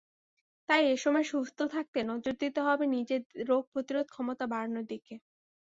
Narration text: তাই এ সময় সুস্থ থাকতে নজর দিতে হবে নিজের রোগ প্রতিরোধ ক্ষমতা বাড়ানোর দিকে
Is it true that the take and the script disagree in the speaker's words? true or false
false